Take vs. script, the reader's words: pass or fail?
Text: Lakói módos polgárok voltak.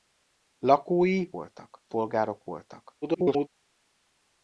fail